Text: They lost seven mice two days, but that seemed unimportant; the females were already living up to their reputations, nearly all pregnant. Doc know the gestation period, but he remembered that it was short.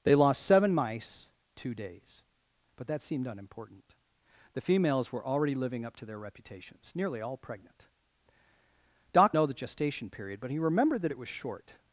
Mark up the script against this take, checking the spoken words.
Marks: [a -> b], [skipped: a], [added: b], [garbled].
They lost seven mice two days, but that seemed unimportant; the females were already living up to their reputations, nearly all pregnant. Doc know the gestation period, but he remembered that it was short.